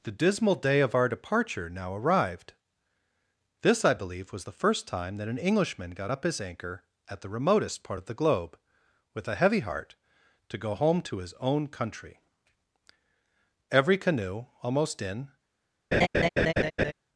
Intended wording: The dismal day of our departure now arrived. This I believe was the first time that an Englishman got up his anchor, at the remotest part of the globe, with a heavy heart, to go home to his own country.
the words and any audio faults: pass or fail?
fail